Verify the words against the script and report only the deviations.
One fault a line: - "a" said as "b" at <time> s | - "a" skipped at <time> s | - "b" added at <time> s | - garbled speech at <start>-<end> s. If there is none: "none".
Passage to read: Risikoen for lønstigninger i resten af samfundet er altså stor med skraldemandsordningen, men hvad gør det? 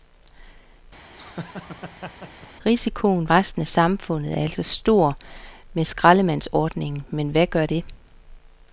- "for lønstigninger i" skipped at 3.3 s